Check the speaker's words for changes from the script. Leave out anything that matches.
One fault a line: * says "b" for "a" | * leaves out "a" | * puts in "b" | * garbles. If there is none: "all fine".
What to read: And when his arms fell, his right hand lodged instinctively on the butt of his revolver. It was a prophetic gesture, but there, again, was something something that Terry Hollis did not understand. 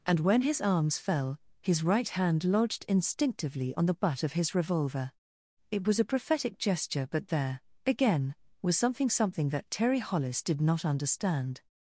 all fine